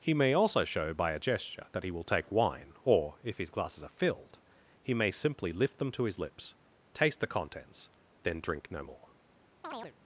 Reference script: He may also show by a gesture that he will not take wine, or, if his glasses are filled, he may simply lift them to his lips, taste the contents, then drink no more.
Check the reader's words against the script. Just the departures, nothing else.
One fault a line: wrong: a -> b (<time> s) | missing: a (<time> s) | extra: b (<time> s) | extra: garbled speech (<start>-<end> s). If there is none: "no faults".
missing: not (2.0 s)